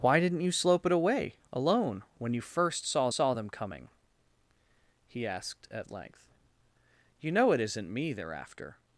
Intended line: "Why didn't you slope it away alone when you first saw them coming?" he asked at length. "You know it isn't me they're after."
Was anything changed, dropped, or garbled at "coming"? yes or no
no